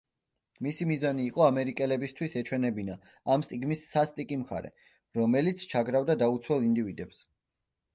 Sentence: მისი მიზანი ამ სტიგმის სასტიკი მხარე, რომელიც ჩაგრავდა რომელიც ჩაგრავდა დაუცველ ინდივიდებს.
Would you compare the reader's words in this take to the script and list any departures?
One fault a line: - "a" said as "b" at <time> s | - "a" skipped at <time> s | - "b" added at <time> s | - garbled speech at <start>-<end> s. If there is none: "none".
- "იყო ამერიკელებისთვის ეჩვენებინა" added at 1.3 s
- "რომელიც ჩაგრავდა" skipped at 6.2 s